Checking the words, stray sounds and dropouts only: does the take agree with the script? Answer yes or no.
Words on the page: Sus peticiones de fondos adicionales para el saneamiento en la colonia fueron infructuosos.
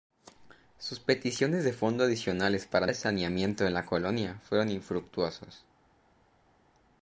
yes